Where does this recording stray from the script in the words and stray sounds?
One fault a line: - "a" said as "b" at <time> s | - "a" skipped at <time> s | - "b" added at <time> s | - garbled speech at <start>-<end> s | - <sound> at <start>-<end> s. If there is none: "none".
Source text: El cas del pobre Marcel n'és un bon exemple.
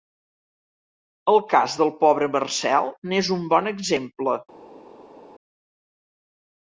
none